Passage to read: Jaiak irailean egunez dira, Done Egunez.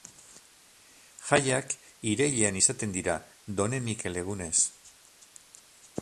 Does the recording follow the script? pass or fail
fail